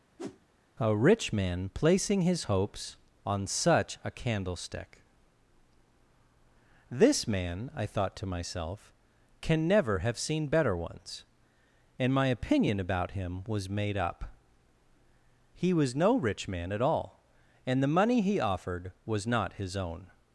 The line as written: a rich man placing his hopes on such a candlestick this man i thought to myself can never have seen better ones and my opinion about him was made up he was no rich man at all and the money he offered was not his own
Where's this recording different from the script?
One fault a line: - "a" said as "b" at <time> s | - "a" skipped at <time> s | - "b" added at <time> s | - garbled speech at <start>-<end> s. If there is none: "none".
none